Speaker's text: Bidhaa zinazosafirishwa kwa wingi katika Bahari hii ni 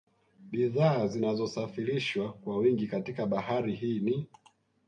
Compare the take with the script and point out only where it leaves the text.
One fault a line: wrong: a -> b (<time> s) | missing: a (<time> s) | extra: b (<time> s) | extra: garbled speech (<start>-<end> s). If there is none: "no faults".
no faults